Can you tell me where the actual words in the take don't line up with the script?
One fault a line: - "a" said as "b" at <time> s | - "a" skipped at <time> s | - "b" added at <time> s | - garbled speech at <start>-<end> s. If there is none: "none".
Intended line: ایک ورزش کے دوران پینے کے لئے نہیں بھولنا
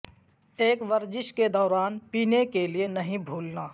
none